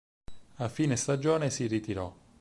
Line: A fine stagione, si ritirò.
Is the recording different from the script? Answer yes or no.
no